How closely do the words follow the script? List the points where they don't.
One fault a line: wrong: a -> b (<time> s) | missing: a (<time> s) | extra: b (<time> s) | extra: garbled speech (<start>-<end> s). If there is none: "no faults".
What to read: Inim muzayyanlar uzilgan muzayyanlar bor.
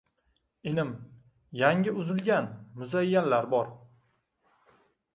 wrong: muzayyanlar -> yangi (1.5 s)